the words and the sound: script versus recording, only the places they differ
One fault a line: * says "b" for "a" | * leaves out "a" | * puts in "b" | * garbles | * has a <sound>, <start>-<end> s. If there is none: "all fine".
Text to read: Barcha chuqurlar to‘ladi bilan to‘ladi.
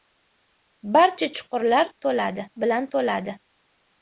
all fine